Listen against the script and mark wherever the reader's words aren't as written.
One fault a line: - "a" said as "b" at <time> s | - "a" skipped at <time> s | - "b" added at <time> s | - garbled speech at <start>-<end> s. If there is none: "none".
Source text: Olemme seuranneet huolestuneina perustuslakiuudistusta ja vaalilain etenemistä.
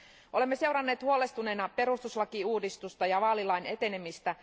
none